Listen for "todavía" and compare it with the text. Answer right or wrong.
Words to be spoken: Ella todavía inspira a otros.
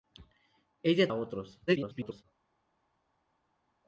wrong